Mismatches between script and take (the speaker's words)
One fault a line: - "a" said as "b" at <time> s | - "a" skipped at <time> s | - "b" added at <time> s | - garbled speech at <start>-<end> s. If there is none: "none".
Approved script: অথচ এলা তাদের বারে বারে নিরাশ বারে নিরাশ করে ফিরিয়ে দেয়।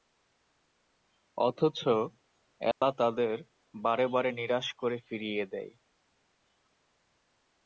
- "বারে নিরাশ" skipped at 4.7 s